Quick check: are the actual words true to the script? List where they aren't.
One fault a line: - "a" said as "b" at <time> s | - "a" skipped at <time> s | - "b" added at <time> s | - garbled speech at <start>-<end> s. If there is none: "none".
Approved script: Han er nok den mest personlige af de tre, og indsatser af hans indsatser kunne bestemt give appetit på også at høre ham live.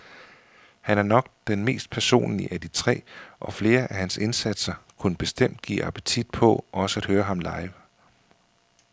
- "indsatser" said as "flere" at 3.5 s